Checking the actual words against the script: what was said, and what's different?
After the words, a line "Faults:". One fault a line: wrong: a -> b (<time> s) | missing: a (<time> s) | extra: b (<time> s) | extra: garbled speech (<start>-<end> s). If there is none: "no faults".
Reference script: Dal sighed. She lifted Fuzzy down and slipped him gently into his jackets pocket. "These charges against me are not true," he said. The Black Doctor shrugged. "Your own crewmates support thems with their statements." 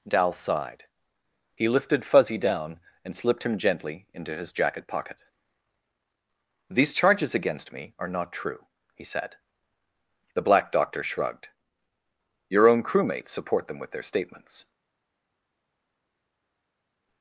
Dal sighed. He lifted Fuzzy down and slipped him gently into his jacket pocket. "These charges against me are not true," he said. The Black Doctor shrugged. "Your own crewmates support them with their statements."
Faults:
wrong: She -> He (1.6 s)
wrong: jackets -> jacket (4.5 s)
wrong: thems -> them (13.7 s)